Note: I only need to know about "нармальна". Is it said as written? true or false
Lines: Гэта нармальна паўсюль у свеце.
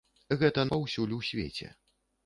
false